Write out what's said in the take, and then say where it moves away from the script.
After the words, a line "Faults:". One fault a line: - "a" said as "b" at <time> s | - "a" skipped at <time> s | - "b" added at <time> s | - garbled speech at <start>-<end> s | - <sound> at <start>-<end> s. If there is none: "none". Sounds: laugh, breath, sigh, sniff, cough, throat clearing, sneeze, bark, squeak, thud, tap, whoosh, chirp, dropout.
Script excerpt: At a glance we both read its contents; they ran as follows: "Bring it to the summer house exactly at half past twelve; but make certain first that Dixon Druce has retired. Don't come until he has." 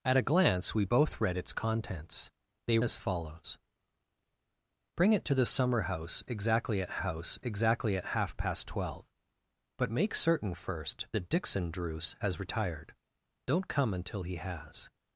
At a glance we both read its contents; they as follows: "Bring it to the summer house exactly at house exactly at half past twelve; but make certain first that Dixon Druce has retired. Don't come until he has."
Faults:
- "ran" skipped at 2.8 s
- "house exactly at" added at 7.0 s